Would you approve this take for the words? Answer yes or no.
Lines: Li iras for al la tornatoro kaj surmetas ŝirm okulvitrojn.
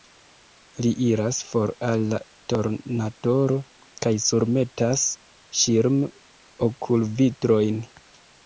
yes